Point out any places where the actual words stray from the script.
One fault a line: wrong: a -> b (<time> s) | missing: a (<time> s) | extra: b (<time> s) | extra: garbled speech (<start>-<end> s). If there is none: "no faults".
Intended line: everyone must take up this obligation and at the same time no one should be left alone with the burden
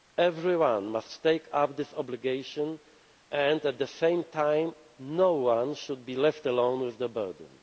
no faults